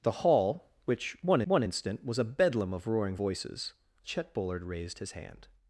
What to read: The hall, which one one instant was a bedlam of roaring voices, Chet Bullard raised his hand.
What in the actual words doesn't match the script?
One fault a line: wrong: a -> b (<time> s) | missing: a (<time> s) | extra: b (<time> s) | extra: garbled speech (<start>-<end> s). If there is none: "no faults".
no faults